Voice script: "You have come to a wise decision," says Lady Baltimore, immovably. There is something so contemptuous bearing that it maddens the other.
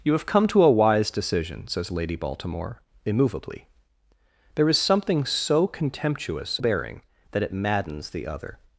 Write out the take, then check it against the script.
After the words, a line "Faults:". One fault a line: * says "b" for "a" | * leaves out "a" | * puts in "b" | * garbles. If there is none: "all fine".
"You have come to a wise decision," says Lady Baltimore, immovably. There is something so contemptuous bearing that it maddens the other.
Faults:
all fine